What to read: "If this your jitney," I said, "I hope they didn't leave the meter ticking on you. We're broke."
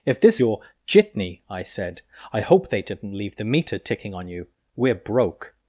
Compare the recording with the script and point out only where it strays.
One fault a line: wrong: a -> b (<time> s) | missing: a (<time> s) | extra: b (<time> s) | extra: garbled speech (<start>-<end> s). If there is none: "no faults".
no faults